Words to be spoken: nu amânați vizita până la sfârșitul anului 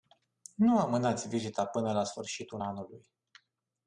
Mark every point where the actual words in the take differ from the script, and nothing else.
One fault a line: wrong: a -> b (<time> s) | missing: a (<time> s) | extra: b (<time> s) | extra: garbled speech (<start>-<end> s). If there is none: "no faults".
no faults